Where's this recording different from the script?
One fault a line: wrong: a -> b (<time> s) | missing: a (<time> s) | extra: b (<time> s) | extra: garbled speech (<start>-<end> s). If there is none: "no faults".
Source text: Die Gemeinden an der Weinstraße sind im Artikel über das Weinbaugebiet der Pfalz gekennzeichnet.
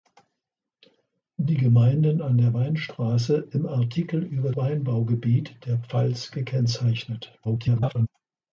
missing: sind (3.5 s)
missing: das (4.5 s)
extra: garbled speech (7.4-8.1 s)